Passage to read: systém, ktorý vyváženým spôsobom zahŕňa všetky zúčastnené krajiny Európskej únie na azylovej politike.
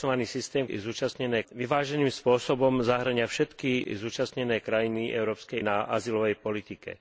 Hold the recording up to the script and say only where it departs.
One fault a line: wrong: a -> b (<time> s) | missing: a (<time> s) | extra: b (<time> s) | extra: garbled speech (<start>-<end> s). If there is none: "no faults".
wrong: ktorý -> zúčastnené (0.8 s)
missing: únie (5.6 s)